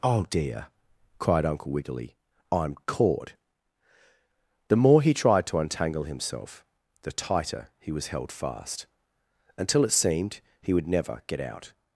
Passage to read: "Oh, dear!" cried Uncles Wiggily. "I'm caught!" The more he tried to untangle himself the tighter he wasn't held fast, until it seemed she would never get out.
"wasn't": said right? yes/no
no